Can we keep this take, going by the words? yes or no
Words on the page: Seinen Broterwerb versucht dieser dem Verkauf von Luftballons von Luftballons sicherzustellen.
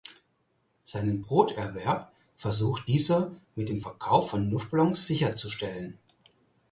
no